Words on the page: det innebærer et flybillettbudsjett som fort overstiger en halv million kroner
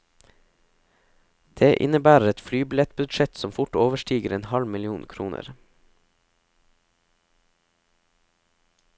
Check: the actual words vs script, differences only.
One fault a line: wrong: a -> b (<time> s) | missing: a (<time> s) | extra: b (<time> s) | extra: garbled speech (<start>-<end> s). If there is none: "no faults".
no faults